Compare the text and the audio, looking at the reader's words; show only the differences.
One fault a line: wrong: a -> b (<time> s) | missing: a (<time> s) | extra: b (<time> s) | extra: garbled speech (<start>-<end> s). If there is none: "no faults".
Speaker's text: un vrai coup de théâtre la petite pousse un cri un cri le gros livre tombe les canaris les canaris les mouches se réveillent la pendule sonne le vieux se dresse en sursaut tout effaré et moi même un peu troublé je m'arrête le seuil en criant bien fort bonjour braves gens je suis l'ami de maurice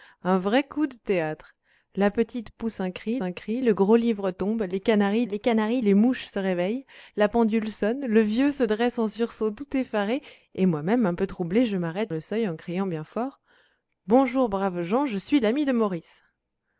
no faults